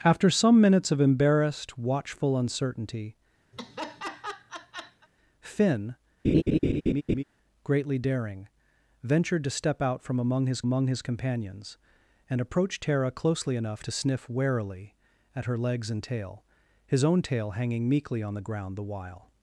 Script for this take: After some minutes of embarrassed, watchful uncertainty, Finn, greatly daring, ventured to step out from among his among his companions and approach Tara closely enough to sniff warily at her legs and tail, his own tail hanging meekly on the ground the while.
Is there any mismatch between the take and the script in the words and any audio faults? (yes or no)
yes